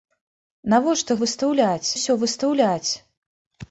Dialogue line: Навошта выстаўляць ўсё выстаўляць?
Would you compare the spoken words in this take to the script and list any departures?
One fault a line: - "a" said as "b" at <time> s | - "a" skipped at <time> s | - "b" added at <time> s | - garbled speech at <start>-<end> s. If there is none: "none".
none